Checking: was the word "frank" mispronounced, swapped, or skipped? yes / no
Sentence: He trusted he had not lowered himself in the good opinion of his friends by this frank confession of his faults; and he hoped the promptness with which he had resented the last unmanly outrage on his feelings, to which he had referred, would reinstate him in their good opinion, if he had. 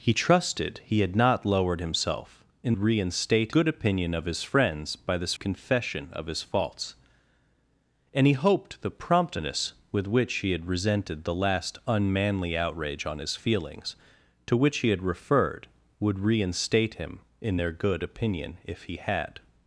yes